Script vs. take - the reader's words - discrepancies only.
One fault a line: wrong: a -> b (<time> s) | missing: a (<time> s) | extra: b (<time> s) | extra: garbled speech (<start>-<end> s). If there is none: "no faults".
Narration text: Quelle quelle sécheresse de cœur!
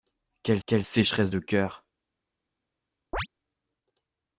no faults